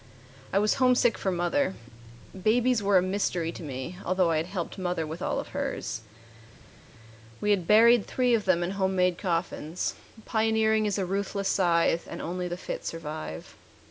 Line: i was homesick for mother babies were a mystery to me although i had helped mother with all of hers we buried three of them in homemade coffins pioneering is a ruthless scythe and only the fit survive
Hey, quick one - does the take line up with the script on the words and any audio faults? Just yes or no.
no